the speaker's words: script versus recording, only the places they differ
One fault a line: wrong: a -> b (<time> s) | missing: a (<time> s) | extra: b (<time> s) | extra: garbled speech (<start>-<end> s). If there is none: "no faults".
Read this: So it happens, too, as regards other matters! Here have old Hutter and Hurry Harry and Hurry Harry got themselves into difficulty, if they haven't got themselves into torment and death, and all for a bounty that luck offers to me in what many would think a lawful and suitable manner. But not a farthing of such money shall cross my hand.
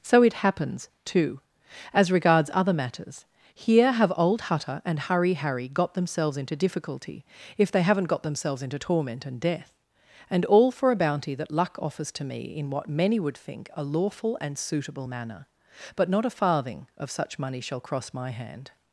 missing: and Hurry Harry (5.7 s)